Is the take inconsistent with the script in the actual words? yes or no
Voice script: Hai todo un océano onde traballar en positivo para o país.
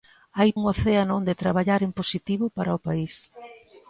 yes